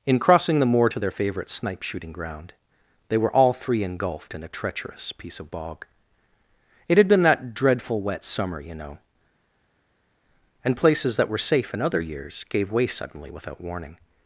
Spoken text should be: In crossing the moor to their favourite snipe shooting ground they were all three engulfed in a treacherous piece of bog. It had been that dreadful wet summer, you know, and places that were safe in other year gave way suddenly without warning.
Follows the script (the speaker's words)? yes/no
no